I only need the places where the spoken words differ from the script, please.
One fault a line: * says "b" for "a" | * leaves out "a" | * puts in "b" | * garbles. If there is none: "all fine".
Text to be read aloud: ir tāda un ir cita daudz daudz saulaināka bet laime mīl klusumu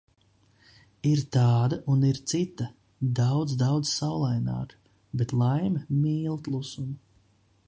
all fine